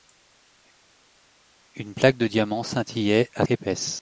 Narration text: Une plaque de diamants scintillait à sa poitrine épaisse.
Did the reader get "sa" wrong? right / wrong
wrong